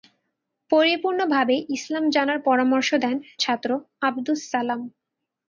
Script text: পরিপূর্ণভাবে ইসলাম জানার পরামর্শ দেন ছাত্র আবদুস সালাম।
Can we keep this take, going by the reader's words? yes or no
yes